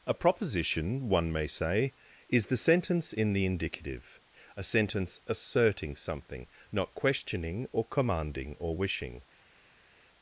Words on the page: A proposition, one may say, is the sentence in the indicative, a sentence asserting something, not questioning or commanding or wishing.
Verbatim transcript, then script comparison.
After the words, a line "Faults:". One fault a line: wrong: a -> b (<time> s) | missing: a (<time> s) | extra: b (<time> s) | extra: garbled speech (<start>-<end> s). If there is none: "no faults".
A proposition, one may say, is the sentence in the indicative, a sentence asserting something, not questioning or commanding or wishing.
Faults:
no faults